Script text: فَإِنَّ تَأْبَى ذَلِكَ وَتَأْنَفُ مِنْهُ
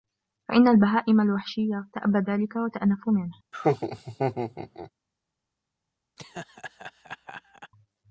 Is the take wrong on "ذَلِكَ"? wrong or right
right